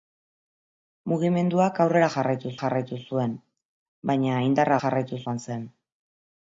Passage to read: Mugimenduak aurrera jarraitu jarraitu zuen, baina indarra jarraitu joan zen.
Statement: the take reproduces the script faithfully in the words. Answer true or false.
true